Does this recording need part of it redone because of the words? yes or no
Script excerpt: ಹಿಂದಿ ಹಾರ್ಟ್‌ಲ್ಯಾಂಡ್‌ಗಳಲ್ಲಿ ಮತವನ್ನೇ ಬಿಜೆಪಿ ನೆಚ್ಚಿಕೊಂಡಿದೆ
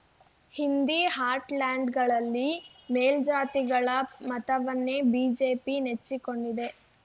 yes